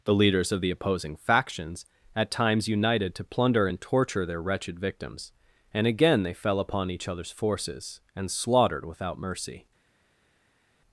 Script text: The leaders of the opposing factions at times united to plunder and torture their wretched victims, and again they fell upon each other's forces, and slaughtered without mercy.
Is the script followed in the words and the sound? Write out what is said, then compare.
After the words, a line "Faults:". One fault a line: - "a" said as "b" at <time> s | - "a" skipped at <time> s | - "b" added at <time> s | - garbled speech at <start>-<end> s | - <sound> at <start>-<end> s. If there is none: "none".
The leaders of the opposing factions at times united to plunder and torture their wretched victims, and again they fell upon each other's forces, and slaughtered without mercy.
Faults:
none